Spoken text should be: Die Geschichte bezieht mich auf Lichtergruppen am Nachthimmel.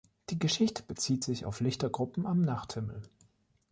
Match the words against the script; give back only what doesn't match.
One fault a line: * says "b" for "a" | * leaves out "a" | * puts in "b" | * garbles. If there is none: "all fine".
* says "sich" for "mich"